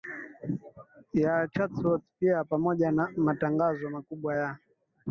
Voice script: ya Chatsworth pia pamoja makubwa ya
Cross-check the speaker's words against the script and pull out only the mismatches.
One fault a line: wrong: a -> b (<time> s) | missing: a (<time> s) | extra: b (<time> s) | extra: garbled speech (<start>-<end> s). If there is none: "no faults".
extra: na matangazo (2.9 s)